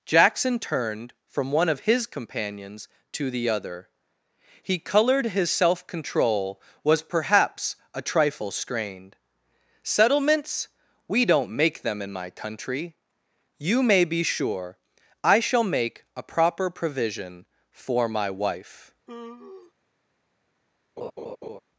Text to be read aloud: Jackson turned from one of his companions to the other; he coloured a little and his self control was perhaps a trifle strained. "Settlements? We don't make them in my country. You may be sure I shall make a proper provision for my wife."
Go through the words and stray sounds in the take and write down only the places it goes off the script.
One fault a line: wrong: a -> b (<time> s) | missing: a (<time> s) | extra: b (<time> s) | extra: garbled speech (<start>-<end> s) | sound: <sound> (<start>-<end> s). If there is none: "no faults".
missing: a little and (5.3 s)
sound: sigh (19.1-19.7 s)
sound: laugh (21.0-21.6 s)